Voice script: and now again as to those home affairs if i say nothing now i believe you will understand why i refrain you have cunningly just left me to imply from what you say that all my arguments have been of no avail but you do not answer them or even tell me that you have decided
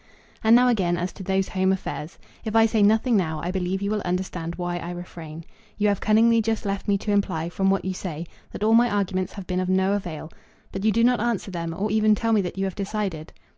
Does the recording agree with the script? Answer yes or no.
yes